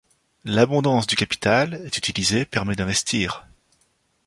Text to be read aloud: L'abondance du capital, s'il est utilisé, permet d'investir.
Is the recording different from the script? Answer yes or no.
yes